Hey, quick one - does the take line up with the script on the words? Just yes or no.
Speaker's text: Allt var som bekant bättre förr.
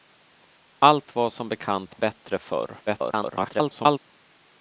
no